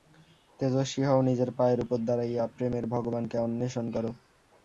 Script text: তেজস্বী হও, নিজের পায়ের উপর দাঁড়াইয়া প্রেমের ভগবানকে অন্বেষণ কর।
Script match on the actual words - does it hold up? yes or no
yes